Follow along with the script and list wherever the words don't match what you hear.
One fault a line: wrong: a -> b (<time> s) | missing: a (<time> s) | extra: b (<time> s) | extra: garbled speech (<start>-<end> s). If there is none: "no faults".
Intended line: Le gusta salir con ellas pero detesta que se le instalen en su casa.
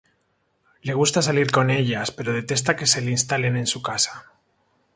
no faults